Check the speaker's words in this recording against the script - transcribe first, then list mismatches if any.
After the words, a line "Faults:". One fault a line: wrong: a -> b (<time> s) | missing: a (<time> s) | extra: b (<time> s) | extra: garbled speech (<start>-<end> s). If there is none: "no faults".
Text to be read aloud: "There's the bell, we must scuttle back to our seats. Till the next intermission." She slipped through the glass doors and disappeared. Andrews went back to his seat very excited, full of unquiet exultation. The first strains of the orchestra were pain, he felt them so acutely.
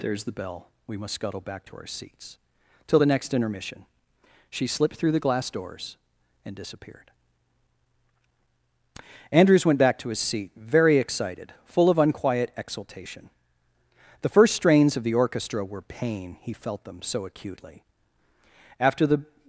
"There's the bell, we must scuttle back to our seats. Till the next intermission." She slipped through the glass doors and disappeared. Andrews went back to his seat very excited, full of unquiet exultation. The first strains of the orchestra were pain, he felt them so acutely. After the
Faults:
extra: After the (18.8 s)